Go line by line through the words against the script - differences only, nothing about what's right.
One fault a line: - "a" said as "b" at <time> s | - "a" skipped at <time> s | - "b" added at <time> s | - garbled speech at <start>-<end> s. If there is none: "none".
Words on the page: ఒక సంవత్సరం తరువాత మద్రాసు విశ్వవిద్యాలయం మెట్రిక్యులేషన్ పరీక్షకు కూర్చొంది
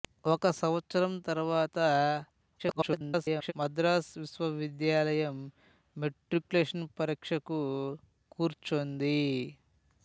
- garbled speech at 2.6-3.5 s